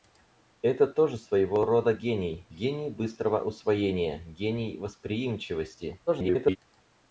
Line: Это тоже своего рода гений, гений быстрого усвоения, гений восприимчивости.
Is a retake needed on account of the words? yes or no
yes